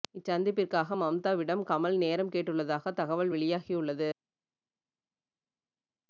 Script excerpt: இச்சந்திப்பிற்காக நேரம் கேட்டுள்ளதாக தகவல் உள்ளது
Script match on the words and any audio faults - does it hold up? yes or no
no